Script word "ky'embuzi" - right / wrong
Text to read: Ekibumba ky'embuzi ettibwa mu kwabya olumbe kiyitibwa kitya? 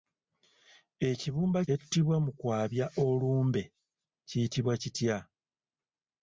wrong